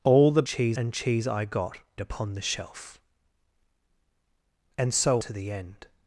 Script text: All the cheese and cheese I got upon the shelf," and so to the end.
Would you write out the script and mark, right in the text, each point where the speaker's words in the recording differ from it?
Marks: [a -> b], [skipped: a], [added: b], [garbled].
All the cheese and cheese I got upon the shelf," and so to the end.